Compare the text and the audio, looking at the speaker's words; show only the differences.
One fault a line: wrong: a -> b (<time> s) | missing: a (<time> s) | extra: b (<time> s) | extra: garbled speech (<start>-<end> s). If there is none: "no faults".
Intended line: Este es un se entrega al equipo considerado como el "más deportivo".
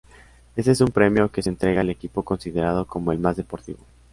extra: premio que (0.9 s)